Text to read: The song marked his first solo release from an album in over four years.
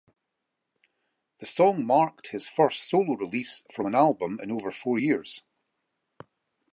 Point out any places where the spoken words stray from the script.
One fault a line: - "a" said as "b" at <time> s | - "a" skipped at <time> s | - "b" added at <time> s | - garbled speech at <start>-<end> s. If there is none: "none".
none